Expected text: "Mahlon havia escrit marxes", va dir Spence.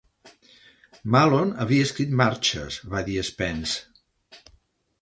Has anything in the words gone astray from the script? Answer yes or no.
no